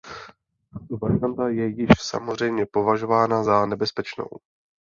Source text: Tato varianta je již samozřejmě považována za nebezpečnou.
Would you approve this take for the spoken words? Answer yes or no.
yes